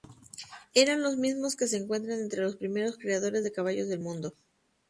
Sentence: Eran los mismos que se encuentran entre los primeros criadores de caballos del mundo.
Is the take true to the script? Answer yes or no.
yes